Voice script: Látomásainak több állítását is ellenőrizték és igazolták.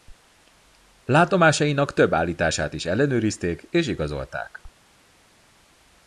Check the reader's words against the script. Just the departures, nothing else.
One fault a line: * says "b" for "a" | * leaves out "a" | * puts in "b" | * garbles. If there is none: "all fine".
all fine